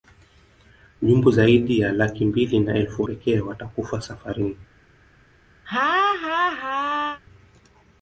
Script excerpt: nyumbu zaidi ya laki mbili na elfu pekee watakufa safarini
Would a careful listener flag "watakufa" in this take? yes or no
no